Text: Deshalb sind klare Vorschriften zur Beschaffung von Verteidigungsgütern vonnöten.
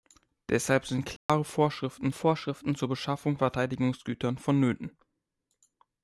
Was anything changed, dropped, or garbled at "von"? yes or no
yes